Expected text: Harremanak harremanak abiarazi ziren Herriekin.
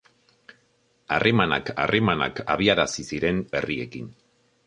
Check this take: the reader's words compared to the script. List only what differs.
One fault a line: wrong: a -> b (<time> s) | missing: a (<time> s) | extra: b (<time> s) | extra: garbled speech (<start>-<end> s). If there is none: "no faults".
no faults